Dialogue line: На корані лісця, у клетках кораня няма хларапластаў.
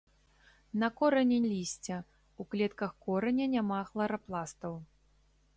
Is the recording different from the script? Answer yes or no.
no